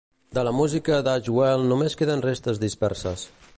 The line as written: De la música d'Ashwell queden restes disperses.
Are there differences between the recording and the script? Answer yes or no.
yes